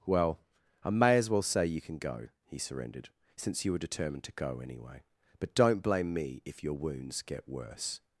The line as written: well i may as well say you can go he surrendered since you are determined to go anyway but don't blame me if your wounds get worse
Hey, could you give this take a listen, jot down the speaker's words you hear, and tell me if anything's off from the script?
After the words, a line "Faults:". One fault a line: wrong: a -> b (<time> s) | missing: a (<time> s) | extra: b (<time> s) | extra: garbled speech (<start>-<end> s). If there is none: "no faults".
well i may as well say you can go he surrendered since you were determined to go anyway but don't blame me if your wounds get worse
Faults:
wrong: are -> were (3.7 s)